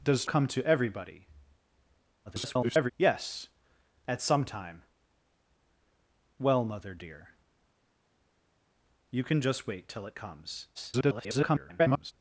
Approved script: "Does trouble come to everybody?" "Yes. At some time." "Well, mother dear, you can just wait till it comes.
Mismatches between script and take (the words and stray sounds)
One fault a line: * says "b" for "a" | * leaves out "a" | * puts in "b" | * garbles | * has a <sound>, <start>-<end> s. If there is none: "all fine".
* leaves out "trouble"
* garbles
* garbles